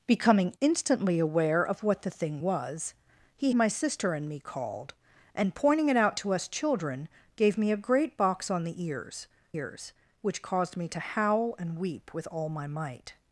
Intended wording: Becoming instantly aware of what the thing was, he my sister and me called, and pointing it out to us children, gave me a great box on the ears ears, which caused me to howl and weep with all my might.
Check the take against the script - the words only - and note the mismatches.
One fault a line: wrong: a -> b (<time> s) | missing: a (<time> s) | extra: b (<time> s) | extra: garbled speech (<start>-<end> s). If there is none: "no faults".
no faults